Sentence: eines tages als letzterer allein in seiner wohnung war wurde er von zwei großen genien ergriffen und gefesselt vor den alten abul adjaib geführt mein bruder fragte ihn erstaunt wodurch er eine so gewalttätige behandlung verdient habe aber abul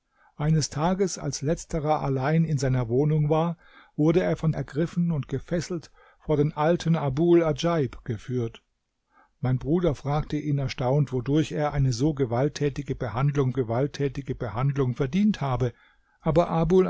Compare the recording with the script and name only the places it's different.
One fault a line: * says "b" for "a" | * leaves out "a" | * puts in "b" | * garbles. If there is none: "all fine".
* leaves out "zwei großen genien"
* puts in "gewalttätige behandlung"